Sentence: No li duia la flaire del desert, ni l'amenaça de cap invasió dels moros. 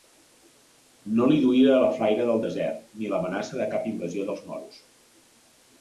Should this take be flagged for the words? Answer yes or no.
no